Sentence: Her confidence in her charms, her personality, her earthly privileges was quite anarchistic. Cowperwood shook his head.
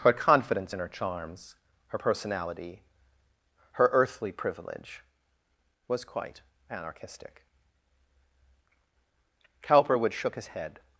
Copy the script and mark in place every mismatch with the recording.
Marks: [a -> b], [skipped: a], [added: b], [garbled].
Her confidence in her charms, her personality, her earthly [privileges -> privilege] was quite anarchistic. Cowperwood shook his head.